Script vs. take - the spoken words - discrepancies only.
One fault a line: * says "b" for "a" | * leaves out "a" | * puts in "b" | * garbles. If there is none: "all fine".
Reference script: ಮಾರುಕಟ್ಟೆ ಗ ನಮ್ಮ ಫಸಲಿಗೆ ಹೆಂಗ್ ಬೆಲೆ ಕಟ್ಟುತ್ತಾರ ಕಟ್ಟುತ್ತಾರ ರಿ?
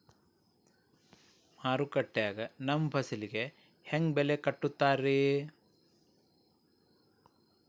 * leaves out "ಕಟ್ಟುತ್ತಾರ"